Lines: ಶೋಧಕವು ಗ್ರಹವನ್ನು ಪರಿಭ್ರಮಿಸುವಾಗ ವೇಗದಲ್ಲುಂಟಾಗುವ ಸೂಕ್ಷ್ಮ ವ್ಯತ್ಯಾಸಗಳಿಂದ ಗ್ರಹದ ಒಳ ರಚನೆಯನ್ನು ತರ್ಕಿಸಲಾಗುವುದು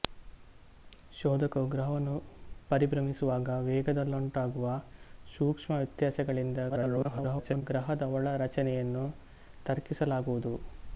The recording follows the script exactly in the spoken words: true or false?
false